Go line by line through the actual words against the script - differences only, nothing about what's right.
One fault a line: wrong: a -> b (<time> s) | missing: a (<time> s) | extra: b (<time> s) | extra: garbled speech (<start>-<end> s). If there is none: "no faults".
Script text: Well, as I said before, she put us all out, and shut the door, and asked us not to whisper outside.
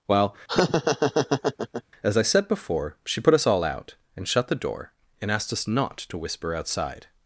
no faults